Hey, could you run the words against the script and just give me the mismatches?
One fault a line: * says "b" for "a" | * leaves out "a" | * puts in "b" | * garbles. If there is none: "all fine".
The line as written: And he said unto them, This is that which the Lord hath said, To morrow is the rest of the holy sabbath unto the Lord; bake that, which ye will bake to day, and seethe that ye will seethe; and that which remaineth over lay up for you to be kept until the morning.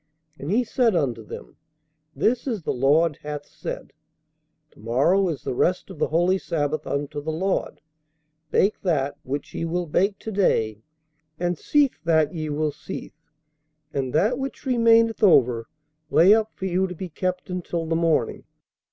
* leaves out "that which"